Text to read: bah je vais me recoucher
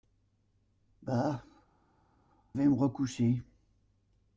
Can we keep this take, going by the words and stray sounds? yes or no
no